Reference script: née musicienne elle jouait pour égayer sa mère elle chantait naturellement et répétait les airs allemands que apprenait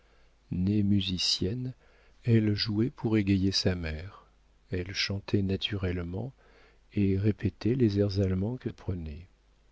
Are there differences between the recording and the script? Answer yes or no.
no